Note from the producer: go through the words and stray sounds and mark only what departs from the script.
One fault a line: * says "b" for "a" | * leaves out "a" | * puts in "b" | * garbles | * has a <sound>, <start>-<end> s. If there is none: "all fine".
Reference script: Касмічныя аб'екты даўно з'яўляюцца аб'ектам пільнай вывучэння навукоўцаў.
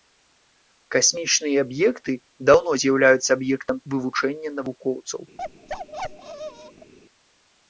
* leaves out "пільнай"
* has a bark, 5.4-6.9 s